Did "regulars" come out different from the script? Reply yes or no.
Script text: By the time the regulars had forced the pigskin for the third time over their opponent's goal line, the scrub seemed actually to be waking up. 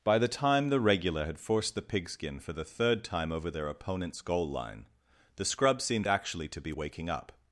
yes